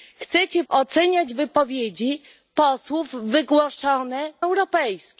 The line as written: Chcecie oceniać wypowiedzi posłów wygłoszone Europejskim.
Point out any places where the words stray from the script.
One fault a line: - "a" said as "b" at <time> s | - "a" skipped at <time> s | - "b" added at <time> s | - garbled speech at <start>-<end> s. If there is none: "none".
none